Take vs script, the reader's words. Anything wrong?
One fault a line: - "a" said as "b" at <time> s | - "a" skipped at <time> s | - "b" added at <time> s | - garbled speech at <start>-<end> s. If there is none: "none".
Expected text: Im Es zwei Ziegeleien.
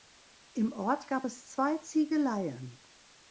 - "Ort gab" added at 0.7 s